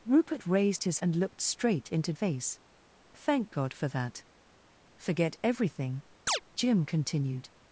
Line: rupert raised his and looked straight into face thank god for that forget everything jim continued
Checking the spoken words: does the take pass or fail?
pass